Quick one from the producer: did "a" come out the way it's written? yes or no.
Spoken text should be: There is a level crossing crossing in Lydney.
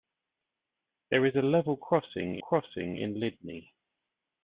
yes